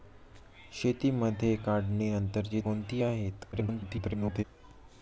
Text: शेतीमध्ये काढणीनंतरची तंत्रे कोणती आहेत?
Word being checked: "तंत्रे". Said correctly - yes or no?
no